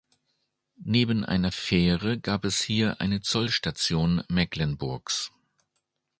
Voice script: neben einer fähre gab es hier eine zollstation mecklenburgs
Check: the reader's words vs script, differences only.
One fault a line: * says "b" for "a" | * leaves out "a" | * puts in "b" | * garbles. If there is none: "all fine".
all fine